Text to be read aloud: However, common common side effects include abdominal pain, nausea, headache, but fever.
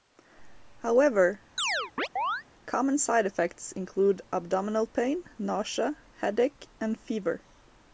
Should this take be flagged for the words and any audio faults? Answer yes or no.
yes